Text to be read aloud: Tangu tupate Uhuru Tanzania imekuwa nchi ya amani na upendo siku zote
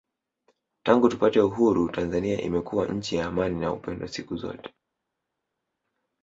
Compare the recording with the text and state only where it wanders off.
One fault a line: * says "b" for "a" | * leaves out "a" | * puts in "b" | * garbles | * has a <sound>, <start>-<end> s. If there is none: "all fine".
all fine